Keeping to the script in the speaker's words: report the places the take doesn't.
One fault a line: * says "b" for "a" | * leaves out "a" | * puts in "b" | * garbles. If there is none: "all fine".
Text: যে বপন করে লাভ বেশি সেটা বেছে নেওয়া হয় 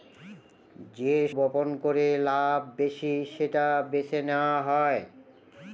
all fine